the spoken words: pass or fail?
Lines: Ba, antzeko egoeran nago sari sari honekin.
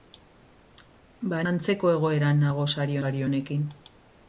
pass